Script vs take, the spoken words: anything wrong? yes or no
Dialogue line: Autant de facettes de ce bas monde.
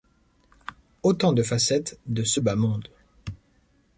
no